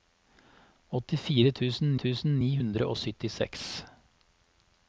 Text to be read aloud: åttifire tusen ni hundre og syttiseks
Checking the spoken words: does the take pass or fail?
fail